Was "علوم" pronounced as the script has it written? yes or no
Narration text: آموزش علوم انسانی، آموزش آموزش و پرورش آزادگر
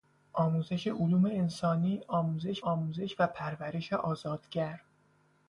yes